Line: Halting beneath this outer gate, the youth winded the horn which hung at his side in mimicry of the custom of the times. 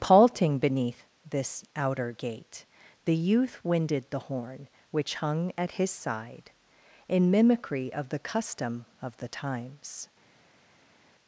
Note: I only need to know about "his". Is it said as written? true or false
true